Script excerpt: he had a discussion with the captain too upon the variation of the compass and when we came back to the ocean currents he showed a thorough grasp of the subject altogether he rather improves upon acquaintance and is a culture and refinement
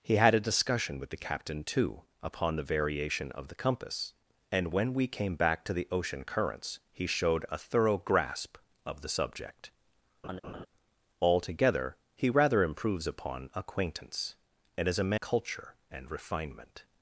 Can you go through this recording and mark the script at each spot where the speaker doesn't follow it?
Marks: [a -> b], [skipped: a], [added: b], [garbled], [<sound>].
he had a discussion with the captain too upon the variation of the compass and when we came back to the ocean currents he showed a thorough grasp of the subject [laugh] altogether he rather improves upon acquaintance and is a culture and refinement